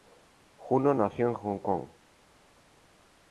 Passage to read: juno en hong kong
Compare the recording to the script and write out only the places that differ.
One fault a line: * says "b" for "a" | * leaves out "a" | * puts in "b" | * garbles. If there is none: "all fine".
* puts in "nació"